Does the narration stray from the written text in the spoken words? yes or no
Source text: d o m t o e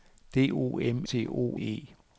no